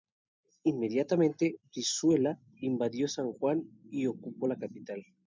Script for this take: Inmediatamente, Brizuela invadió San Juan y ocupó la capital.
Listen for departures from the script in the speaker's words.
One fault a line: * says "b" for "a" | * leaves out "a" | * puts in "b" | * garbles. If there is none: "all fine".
all fine